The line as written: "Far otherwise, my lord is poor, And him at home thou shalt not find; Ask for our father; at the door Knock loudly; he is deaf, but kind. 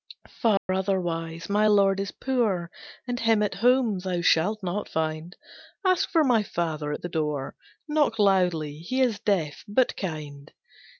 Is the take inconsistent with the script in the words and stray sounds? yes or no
yes